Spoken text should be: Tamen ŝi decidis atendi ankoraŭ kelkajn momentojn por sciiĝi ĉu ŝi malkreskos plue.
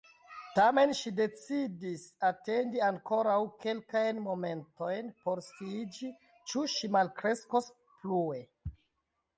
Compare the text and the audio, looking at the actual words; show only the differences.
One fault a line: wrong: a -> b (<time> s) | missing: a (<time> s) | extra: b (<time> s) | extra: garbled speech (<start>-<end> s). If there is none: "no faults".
no faults